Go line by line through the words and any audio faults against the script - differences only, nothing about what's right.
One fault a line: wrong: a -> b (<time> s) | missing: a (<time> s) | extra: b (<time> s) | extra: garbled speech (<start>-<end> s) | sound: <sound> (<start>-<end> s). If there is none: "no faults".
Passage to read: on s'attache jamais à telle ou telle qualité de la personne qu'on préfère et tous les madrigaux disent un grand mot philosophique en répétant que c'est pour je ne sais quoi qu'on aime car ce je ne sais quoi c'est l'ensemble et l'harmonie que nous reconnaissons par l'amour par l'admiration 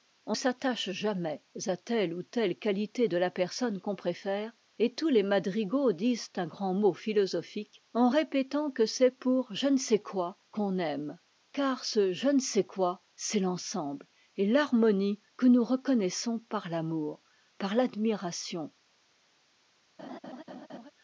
sound: laugh (20.0-20.9 s)